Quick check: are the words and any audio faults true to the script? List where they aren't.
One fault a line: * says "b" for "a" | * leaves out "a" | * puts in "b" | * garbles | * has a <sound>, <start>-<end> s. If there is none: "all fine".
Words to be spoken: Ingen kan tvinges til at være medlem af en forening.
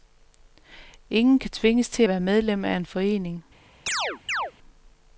* leaves out "at"
* has a chirp, 3.9-4.5 s